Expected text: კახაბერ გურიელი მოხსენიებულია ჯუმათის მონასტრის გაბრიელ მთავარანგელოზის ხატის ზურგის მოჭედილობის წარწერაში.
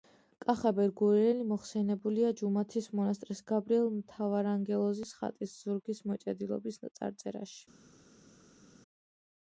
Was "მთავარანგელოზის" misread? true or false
false